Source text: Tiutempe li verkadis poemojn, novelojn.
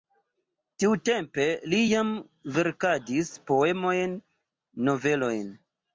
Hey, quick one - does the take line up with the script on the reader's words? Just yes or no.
no